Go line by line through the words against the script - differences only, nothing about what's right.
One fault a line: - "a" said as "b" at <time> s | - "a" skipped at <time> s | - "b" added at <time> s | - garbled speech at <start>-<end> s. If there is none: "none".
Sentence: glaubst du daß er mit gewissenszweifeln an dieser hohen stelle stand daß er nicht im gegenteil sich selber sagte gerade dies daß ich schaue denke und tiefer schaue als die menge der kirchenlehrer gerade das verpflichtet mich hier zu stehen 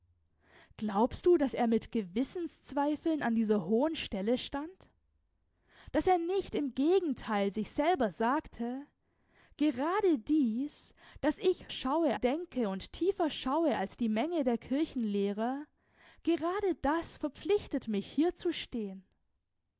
none